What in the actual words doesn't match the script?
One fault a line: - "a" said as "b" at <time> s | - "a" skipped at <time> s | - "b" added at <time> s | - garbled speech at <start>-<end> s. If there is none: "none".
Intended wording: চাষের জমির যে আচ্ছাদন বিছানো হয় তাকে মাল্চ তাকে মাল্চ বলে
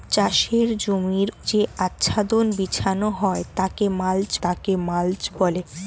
none